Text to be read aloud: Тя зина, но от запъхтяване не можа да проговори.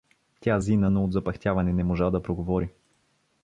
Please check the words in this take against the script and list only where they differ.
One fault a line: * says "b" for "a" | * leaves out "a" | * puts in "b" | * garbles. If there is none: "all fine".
all fine